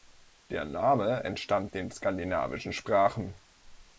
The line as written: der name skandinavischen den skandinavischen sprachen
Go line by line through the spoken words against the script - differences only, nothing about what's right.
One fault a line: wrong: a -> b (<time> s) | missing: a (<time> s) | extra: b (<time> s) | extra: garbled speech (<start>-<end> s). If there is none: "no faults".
wrong: skandinavischen -> entstammt (1.2 s)